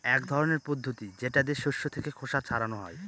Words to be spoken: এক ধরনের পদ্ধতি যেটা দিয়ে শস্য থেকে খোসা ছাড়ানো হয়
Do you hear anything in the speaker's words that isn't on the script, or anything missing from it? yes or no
no